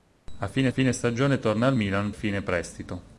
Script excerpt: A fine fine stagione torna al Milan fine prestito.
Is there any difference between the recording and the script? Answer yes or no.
no